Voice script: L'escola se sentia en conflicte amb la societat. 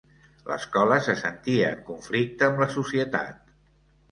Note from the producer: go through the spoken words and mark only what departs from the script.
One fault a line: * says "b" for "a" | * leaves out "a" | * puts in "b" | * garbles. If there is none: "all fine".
all fine